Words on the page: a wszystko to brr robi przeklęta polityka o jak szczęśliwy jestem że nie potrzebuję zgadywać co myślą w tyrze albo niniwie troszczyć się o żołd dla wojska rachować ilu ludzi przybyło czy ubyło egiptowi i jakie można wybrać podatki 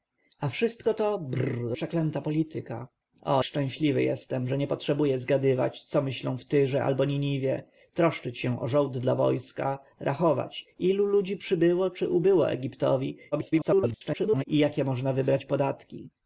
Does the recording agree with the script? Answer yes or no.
no